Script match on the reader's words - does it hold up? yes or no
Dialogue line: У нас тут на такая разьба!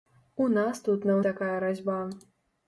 yes